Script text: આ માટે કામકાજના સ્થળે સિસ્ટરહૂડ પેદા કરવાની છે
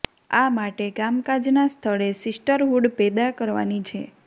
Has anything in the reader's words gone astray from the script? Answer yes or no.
no